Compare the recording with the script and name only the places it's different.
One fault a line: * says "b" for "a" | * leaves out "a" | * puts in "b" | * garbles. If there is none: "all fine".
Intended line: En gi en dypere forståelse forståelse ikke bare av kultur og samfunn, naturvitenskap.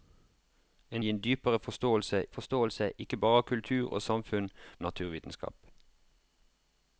all fine